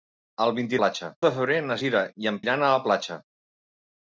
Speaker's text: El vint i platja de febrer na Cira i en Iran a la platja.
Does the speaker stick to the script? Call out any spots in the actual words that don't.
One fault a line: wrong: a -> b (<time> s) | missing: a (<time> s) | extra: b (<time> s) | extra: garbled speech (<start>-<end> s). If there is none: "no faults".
no faults